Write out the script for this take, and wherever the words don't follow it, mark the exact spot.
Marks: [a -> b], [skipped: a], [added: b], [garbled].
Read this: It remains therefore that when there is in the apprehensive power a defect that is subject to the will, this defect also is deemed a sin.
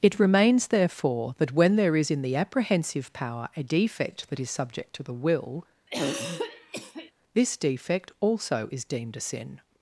It remains therefore that when there is in the apprehensive power a defect that is subject to the will, this defect also is deemed a sin.